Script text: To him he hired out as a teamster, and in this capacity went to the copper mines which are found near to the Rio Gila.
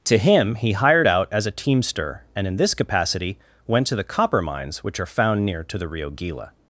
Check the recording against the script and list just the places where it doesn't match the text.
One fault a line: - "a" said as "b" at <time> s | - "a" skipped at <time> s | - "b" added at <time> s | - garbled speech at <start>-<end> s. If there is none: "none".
none